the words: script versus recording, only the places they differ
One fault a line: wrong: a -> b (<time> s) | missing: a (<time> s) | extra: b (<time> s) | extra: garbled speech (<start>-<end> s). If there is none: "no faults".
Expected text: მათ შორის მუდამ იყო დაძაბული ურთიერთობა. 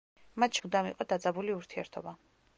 missing: შორის (0.6 s)